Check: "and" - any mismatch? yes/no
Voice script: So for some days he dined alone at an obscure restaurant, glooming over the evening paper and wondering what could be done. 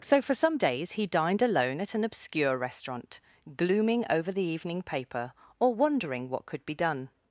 yes